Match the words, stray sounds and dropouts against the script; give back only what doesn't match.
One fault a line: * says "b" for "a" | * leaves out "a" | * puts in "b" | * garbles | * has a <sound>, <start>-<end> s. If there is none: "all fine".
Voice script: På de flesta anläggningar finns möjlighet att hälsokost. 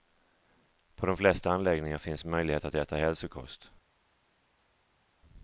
* puts in "äta"